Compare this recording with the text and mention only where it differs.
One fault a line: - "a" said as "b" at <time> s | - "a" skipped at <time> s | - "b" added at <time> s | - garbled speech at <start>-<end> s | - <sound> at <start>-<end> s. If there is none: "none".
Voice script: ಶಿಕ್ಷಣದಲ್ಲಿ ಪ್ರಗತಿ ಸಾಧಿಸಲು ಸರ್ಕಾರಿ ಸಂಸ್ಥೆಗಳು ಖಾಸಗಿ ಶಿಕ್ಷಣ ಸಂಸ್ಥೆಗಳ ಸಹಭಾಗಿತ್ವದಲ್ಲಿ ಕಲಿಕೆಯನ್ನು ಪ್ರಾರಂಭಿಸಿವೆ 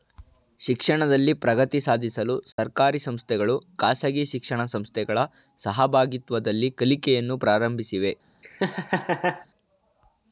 - dropout at 2.5-2.6 s
- laugh at 8.4-9.5 s